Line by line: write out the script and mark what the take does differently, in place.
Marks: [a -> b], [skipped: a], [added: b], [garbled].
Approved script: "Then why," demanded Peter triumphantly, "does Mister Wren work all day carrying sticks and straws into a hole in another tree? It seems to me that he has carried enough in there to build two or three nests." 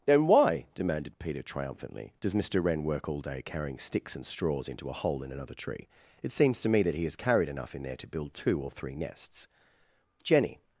"Then why," demanded Peter triumphantly, "does Mister Wren work all day carrying sticks and straws into a hole in another tree? It seems to me that he has carried enough in there to build two or three nests." [added: Jenny]